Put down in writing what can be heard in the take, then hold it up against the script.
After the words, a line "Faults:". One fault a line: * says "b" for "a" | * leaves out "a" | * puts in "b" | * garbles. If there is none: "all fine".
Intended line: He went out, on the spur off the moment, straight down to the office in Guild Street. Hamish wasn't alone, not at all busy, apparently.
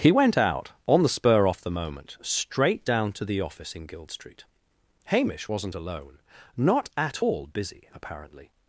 He went out, on the spur off the moment, straight down to the office in Guild Street. Hamish wasn't alone, not at all busy, apparently.
Faults:
all fine